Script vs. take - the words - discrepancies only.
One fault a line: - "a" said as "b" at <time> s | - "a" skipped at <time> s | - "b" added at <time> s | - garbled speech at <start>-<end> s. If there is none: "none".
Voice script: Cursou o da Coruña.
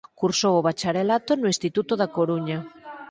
- "bacharelato no Instituto" added at 0.7 s